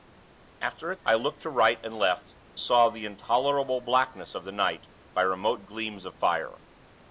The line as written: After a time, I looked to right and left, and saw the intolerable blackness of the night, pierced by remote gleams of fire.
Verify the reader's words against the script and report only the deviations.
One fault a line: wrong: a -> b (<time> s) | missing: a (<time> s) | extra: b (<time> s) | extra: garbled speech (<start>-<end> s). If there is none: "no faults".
missing: time (0.9 s)
missing: and (2.3 s)
missing: pierced (4.9 s)